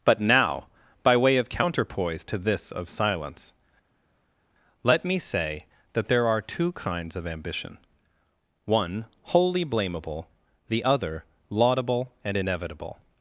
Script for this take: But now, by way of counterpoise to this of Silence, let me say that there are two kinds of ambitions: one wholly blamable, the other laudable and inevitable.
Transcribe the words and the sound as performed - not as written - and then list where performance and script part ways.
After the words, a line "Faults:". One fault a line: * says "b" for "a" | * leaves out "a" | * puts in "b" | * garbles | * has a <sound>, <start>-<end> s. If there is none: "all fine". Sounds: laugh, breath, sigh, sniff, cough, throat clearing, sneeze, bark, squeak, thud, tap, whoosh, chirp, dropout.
But now, by way of counterpoise to this of Silence, let me say that there are two kinds of ambition: one wholly blamable, the other laudable and inevitable.
Faults:
* says "ambition" for "ambitions"